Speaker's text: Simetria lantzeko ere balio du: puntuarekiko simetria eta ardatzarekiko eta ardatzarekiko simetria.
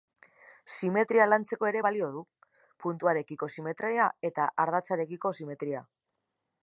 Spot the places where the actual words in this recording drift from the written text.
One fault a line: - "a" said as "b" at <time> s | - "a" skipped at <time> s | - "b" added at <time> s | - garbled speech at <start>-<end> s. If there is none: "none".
- "eta ardatzarekiko" skipped at 5.3 s